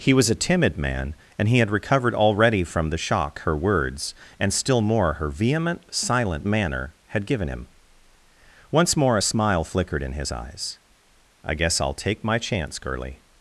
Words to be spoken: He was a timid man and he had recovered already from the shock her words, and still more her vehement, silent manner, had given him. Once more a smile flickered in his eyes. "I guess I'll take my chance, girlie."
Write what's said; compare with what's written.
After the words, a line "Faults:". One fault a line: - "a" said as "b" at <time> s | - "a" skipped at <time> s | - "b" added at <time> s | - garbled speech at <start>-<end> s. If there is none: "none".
He was a timid man and he had recovered already from the shock her words, and still more her vehement, silent manner, had given him. Once more a smile flickered in his eyes. "I guess I'll take my chance, girlie."
Faults:
none